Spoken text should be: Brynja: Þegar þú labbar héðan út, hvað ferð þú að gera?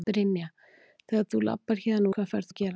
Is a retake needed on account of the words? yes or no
yes